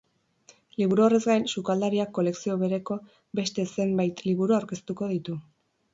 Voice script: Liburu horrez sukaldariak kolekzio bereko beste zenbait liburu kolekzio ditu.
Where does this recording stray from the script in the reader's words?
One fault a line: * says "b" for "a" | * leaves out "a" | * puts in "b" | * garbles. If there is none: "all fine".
* puts in "gain"
* says "aurkeztuko" for "kolekzio"